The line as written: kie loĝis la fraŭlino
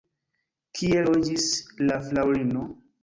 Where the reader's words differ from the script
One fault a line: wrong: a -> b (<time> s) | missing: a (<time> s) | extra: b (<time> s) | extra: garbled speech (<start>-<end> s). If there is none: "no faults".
no faults